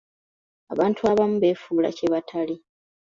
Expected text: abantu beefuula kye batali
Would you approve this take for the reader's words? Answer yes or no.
no